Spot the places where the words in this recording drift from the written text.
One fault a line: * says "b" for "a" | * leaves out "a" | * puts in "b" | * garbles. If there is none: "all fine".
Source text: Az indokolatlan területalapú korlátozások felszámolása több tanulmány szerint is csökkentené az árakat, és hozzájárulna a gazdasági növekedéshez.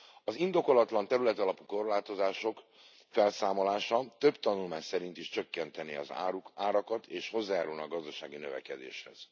all fine